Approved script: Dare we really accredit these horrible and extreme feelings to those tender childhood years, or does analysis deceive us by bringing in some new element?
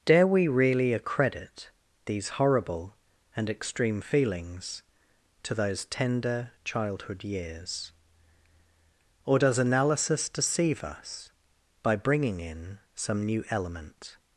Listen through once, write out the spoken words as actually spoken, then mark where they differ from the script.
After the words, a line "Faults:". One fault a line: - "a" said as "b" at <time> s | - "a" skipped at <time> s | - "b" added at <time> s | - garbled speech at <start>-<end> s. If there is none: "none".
Dare we really accredit these horrible and extreme feelings to those tender childhood years, or does analysis deceive us by bringing in some new element?
Faults:
none